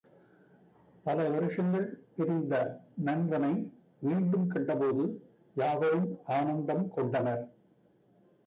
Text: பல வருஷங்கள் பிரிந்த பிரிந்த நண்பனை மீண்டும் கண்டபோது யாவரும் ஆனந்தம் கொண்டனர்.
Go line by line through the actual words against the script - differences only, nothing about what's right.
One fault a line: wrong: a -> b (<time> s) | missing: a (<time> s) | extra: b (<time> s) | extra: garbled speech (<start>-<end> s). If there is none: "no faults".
missing: பிரிந்த (2.5 s)